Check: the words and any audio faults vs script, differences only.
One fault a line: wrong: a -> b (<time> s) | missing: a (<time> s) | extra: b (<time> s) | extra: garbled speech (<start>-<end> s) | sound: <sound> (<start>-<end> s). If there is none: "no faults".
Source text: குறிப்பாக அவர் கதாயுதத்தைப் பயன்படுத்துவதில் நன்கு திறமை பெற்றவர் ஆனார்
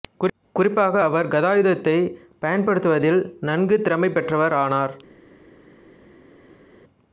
no faults